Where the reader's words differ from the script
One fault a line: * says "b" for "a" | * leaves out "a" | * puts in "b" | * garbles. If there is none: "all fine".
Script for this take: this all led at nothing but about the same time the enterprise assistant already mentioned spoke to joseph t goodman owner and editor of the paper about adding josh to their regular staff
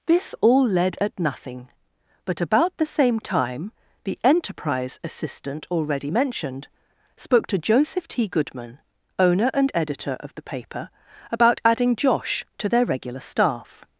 all fine